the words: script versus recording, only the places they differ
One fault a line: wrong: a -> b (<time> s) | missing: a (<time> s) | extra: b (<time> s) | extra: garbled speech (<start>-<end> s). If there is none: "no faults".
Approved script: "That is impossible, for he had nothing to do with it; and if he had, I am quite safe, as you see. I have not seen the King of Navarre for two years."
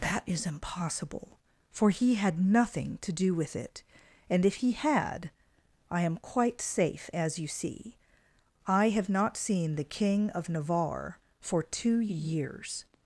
no faults